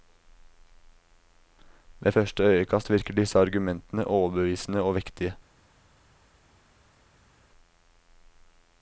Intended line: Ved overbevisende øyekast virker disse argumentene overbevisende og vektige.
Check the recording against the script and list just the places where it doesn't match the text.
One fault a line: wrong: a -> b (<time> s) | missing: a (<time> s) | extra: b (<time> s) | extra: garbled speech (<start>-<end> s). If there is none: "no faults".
wrong: overbevisende -> første (2.1 s)